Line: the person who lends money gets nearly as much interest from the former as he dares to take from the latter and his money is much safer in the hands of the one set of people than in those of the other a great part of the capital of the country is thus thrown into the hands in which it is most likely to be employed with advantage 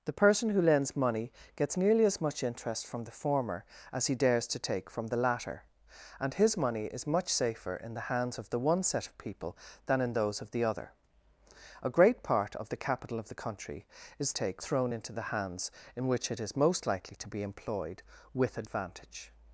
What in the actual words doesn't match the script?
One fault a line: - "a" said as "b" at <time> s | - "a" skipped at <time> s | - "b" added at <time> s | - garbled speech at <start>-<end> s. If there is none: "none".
- "thus" said as "take" at 14.3 s